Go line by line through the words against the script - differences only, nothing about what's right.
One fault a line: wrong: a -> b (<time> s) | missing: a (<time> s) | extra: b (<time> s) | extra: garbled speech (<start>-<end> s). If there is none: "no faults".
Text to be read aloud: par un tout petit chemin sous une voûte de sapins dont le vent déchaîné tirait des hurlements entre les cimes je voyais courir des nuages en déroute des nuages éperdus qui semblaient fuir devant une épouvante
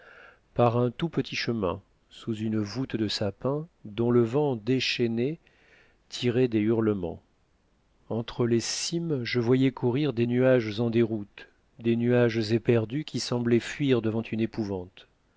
no faults